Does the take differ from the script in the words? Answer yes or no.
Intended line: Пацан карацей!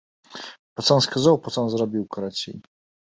yes